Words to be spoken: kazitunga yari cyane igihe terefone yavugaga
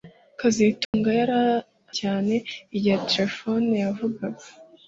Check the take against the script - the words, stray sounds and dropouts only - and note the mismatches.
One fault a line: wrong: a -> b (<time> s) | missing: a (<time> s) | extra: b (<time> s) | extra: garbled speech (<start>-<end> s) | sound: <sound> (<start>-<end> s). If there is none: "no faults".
sound: dropout (0.8-0.9 s)